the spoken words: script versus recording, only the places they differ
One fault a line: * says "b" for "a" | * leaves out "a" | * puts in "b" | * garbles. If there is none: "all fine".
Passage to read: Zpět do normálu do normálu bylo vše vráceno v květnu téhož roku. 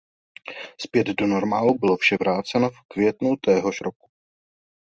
* leaves out "do normálu"